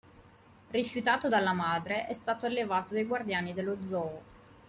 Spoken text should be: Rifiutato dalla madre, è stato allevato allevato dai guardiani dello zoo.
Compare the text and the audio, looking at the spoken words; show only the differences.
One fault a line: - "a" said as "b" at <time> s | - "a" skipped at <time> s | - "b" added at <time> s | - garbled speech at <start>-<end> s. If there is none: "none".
- "allevato" skipped at 2.9 s